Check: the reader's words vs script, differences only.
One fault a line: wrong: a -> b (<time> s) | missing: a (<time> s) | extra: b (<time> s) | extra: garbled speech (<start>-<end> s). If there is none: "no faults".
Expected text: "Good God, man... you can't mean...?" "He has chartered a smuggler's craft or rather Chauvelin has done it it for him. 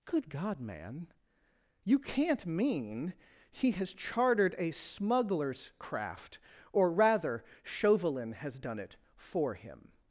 missing: it (9.0 s)